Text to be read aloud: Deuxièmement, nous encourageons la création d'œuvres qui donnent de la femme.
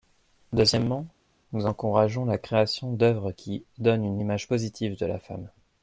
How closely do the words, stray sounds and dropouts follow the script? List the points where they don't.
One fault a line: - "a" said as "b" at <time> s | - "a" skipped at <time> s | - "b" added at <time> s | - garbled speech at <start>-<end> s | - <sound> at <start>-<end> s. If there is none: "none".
- "une image positive" added at 4.1 s